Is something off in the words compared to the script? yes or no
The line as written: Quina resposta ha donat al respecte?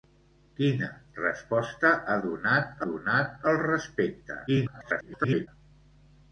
yes